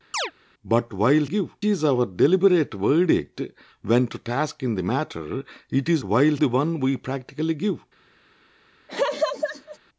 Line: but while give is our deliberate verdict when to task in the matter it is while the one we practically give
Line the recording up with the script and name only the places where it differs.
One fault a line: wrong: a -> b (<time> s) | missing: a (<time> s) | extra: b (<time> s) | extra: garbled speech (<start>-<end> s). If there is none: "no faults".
no faults